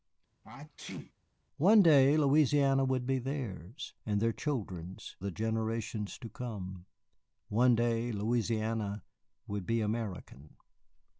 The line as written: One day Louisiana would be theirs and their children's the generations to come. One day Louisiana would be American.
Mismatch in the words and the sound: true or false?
true